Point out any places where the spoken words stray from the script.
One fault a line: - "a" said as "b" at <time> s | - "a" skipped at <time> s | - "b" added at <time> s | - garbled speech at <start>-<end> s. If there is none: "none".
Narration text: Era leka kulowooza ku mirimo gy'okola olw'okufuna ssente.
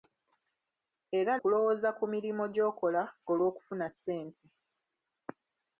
- "leka" skipped at 1.3 s